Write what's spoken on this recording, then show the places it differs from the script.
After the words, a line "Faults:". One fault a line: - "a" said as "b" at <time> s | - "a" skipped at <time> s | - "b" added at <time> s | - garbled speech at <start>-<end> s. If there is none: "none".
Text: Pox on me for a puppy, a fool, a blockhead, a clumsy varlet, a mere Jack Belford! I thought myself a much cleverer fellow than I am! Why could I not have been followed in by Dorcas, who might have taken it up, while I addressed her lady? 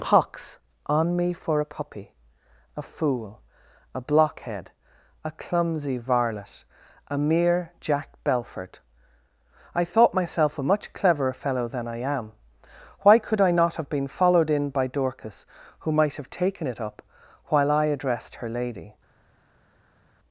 Pox on me for a puppy, a fool, a blockhead, a clumsy varlet, a mere Jack Belford! I thought myself a much cleverer fellow than I am! Why could I not have been followed in by Dorcas, who might have taken it up, while I addressed her lady?
Faults:
none